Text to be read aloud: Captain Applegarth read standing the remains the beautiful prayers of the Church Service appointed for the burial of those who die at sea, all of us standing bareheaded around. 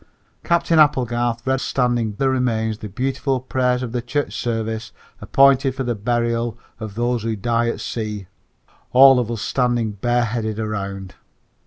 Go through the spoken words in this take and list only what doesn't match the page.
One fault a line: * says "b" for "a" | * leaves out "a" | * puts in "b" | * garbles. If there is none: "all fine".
all fine